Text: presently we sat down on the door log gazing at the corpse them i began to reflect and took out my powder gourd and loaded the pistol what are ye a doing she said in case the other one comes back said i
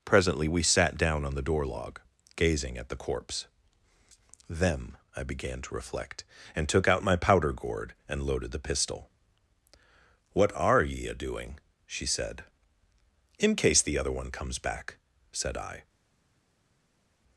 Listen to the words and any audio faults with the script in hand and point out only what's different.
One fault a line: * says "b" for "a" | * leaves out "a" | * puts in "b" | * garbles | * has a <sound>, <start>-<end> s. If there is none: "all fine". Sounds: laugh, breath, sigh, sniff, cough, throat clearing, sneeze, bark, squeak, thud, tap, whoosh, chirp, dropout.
all fine